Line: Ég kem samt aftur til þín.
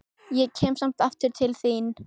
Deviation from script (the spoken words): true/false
false